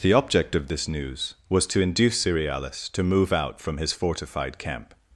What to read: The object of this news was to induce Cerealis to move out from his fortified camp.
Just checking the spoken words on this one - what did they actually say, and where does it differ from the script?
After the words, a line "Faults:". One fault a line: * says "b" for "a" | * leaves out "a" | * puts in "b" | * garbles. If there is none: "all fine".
The object of this news was to induce Cerealis to move out from his fortified camp.
Faults:
all fine